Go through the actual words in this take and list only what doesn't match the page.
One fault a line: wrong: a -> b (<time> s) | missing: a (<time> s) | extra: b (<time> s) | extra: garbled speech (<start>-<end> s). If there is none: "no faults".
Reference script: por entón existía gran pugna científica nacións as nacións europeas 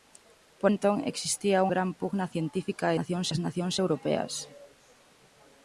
no faults